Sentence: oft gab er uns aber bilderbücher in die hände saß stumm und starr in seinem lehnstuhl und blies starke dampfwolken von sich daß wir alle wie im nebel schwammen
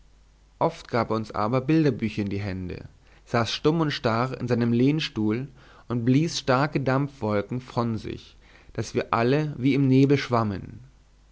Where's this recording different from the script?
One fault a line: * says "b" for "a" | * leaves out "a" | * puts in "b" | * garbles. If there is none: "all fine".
all fine